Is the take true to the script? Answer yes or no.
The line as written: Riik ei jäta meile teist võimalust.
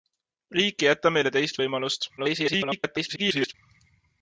no